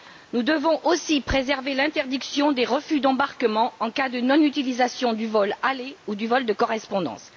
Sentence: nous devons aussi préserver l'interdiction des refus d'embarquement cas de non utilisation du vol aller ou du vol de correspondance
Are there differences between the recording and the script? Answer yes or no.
yes